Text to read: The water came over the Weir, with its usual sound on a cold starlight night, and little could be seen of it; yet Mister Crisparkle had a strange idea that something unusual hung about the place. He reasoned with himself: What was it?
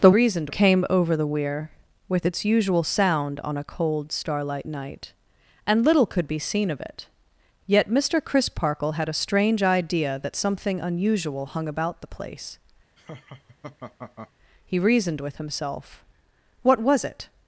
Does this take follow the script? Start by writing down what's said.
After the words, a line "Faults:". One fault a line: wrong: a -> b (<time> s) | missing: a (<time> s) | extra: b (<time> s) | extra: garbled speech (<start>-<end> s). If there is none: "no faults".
The reasoned came over the Weir, with its usual sound on a cold starlight night, and little could be seen of it; yet Mister Crisparkle had a strange idea that something unusual hung about the place. He reasoned with himself: What was it?
Faults:
wrong: water -> reasoned (0.1 s)